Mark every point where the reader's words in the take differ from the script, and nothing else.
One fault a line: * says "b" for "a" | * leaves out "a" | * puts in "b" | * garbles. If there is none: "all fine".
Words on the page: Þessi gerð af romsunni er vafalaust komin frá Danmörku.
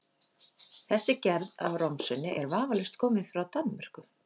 all fine